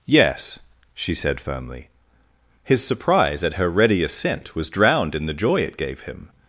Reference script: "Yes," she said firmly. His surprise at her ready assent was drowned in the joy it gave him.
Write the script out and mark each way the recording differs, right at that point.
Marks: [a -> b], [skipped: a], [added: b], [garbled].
"Yes," she said firmly. His surprise at her ready assent was drowned in the joy it gave him.